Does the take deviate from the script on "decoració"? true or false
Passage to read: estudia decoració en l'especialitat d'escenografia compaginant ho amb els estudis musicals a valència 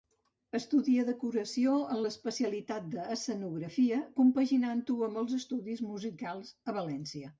false